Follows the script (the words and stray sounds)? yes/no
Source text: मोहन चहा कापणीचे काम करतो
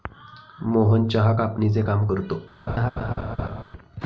no